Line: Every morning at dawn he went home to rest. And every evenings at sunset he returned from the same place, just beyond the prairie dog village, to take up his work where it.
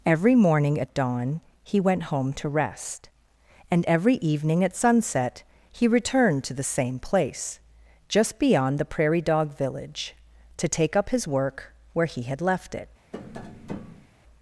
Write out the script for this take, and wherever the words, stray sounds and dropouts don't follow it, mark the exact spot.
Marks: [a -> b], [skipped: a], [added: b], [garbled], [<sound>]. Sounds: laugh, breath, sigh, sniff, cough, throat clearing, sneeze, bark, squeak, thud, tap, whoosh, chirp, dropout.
Every morning at dawn he went home to rest. And every [evenings -> evening] at sunset he returned [from -> to] the same place, just beyond the prairie dog village, to take up his work where [added: he had left] it. [tap]